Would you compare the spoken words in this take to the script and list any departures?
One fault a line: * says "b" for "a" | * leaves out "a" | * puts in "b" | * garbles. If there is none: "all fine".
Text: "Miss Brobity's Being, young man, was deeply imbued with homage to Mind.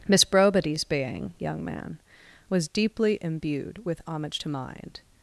all fine